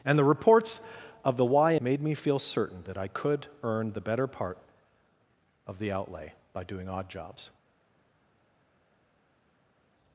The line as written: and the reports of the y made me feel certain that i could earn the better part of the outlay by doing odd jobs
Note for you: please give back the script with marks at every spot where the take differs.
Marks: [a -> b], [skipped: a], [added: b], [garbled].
and the reports of the y made me feel certain that i could earn the better part of the outlay by doing odd jobs